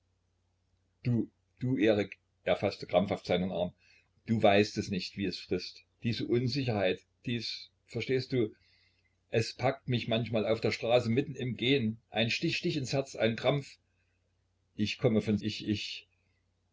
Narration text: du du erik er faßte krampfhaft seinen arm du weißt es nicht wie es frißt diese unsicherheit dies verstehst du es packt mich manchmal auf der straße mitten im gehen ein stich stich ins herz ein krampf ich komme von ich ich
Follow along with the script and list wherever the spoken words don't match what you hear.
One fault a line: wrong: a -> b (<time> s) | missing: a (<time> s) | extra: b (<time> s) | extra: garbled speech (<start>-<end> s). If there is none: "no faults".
no faults